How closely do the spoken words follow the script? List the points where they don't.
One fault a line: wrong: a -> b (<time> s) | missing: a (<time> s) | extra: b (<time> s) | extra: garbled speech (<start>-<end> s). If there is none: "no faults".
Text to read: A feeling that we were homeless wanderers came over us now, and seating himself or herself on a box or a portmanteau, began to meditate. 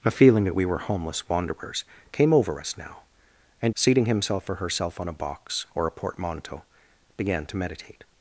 no faults